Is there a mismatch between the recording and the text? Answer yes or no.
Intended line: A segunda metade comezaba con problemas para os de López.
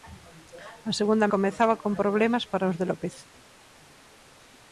yes